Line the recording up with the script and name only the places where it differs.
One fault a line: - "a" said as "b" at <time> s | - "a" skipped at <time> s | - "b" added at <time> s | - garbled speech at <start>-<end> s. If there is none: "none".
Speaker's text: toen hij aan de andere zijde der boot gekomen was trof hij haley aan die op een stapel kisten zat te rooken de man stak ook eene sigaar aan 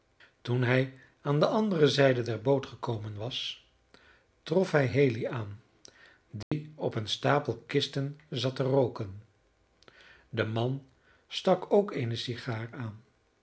none